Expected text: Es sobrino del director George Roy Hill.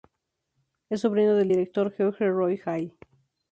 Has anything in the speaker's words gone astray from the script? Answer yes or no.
no